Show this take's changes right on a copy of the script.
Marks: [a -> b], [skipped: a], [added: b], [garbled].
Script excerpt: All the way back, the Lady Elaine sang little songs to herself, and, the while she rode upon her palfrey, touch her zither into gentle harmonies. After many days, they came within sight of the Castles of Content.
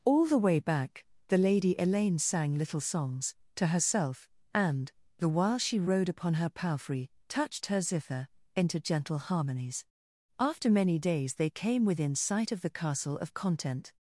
All the way back, the Lady Elaine sang little songs to herself, and, the while she rode upon her palfrey, [touch -> touched] her zither into gentle harmonies. After many days, they came within sight of the [Castles -> Castle] of Content.